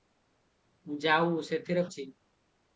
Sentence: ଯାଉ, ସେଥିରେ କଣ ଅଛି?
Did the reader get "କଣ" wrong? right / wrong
wrong